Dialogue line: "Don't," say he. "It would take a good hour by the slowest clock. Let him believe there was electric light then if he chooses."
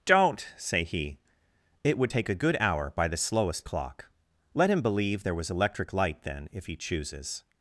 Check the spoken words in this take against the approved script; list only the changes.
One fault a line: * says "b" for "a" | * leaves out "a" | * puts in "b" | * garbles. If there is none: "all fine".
all fine